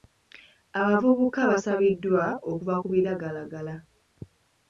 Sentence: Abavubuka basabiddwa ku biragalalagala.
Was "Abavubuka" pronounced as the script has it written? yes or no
yes